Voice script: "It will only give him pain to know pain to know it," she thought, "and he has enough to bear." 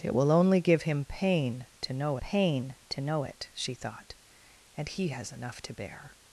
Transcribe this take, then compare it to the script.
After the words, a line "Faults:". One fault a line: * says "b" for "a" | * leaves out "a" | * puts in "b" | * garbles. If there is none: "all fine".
"It will only give him pain to know pain to know it," she thought, "and he has enough to bear."
Faults:
all fine